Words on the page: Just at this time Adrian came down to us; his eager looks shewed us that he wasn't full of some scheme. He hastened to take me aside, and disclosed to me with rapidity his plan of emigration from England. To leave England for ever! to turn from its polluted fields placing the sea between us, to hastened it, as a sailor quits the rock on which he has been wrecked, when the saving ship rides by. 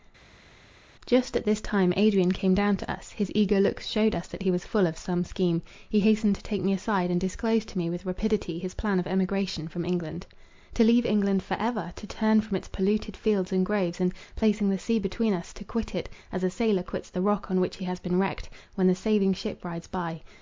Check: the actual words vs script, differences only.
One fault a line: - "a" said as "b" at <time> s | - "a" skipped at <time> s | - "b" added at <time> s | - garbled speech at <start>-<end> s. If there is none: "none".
- "wasn't" said as "was" at 4.5 s
- "and groves and" added at 13.5 s
- "hastened" said as "quit" at 15.6 s